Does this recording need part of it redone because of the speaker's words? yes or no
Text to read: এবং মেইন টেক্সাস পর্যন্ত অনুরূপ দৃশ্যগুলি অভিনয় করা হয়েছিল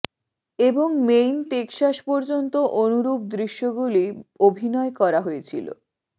no